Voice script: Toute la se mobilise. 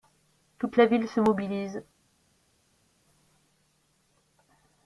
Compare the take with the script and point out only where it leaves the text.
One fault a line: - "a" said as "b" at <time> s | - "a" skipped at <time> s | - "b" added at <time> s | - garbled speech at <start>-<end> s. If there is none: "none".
- "ville" added at 0.9 s